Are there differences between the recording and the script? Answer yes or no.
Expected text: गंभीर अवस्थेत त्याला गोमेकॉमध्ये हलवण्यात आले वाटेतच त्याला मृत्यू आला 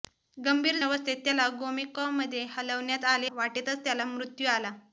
no